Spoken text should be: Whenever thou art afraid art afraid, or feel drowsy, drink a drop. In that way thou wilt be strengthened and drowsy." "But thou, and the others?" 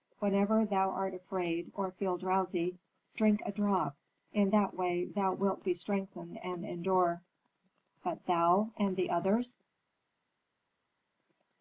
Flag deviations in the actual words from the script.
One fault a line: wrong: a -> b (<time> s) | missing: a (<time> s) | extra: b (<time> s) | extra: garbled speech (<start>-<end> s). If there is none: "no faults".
missing: art afraid (1.7 s)
wrong: drowsy -> endure (6.6 s)